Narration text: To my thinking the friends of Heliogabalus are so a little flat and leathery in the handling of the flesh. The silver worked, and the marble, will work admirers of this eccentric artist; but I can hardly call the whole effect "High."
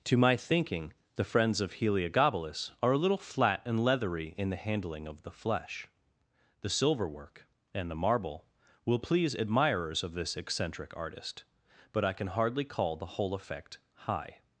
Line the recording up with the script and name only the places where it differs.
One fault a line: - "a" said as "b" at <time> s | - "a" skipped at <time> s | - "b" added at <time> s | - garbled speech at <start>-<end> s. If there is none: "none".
- "so" skipped at 2.9 s
- "worked" said as "work" at 7.1 s
- "work" said as "please" at 9.0 s